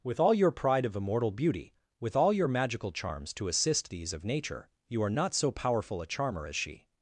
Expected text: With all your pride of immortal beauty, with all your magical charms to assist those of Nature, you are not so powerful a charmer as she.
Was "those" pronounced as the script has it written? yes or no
no